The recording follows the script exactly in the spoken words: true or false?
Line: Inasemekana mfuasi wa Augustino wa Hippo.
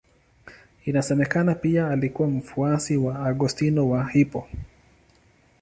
false